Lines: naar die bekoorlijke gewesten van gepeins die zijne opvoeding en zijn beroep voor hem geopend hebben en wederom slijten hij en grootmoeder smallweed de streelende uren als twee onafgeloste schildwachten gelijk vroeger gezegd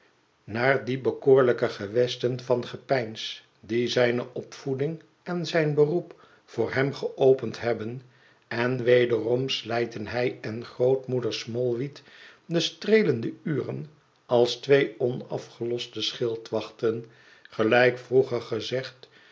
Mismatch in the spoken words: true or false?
false